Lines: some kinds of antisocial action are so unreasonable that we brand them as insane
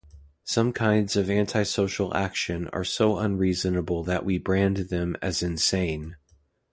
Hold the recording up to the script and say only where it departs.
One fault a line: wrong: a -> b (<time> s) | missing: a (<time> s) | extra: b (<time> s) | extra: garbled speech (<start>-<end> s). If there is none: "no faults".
no faults